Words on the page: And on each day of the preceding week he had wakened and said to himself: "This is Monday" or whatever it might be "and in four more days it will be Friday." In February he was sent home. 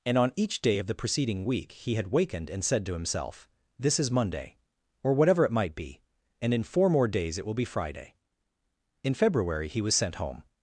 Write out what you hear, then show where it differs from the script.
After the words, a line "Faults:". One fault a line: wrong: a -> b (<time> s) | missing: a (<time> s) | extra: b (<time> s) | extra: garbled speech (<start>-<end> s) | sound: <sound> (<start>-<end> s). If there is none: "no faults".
And on each day of the preceding week he had wakened and said to himself: "This is Monday" or whatever it might be "and in four more days it will be Friday." In February he was sent home.
Faults:
no faults